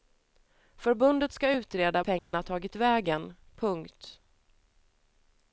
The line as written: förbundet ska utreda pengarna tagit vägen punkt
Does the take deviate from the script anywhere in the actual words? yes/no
no